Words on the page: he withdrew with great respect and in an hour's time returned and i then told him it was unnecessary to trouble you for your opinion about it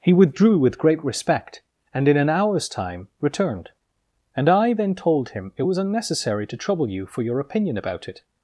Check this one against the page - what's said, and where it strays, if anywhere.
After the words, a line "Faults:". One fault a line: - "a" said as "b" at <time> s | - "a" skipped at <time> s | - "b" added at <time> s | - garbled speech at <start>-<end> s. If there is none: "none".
he withdrew with great respect and in an hour's time returned and i then told him it was unnecessary to trouble you for your opinion about it
Faults:
none